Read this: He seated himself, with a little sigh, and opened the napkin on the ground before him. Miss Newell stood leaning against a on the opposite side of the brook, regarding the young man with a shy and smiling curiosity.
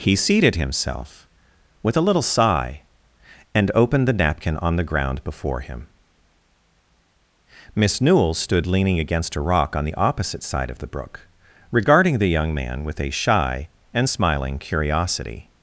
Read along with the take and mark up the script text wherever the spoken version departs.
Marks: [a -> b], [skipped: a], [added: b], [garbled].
He seated himself, with a little sigh, and opened the napkin on the ground before him. Miss Newell stood leaning against a [added: rock] on the opposite side of the brook, regarding the young man with a shy and smiling curiosity.